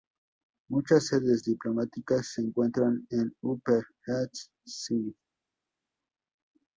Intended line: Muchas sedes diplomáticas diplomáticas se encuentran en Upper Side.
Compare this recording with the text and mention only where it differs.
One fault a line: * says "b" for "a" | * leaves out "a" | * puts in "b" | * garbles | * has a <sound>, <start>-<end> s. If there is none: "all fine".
* leaves out "diplomáticas"
* puts in "East"